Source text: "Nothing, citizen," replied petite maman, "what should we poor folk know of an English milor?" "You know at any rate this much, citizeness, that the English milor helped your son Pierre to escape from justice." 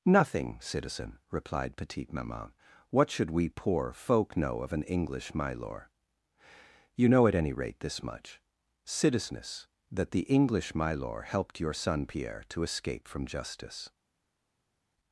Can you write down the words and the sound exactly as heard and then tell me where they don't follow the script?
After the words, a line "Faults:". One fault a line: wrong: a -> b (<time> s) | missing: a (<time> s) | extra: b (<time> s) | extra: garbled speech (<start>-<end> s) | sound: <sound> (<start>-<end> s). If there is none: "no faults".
"Nothing, citizen," replied petite maman, "what should we poor folk know of an English milor?" "You know at any rate this much, citizeness, that the English milor helped your son Pierre to escape from justice."
Faults:
no faults